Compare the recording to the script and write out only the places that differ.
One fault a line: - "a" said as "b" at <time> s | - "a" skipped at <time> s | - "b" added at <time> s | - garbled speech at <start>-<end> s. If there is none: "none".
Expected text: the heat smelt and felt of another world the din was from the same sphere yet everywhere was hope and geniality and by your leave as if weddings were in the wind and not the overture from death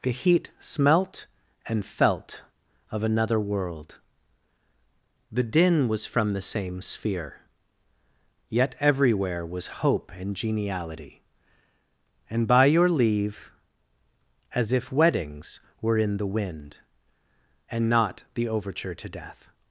- "from" said as "to" at 18.9 s